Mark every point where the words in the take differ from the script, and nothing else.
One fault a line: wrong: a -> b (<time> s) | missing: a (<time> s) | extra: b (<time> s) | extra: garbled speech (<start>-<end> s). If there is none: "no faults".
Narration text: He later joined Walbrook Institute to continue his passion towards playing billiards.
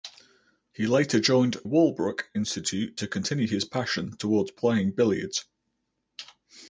no faults